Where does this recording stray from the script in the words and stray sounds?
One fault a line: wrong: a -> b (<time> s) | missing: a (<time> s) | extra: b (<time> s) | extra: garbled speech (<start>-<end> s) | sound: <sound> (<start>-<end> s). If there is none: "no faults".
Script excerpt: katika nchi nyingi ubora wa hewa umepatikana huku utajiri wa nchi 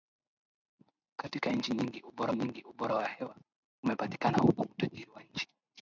extra: nyingi ubora (2.3 s)